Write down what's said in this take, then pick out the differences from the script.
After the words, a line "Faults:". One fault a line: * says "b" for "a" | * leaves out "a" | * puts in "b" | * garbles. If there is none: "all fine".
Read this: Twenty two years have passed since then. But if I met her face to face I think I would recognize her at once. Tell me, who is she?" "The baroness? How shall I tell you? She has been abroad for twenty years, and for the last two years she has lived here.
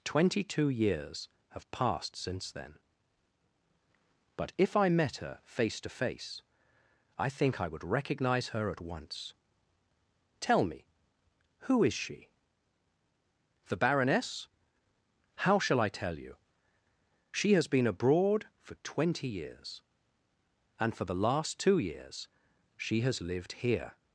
Twenty two years have passed since then. But if I met her face to face I think I would recognize her at once. Tell me, who is she?" "The baroness? How shall I tell you? She has been abroad for twenty years, and for the last two years she has lived here.
Faults:
all fine